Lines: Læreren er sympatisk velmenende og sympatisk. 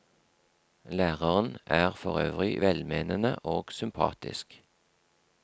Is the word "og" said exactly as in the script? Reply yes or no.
yes